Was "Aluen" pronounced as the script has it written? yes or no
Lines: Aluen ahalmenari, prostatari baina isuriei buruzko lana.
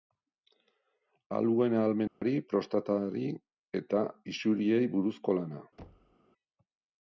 yes